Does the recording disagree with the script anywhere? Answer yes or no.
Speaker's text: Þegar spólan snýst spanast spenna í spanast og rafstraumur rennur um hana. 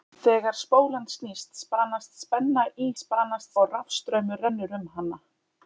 no